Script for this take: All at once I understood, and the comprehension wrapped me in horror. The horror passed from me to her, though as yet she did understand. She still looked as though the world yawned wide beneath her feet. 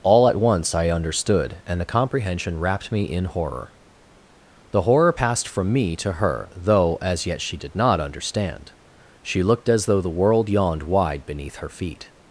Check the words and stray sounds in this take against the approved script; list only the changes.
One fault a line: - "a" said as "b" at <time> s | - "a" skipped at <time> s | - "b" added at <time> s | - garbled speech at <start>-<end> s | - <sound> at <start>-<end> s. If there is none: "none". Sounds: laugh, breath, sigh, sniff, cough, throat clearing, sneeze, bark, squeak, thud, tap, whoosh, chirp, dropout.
- "not" added at 7.7 s
- "still" skipped at 9.4 s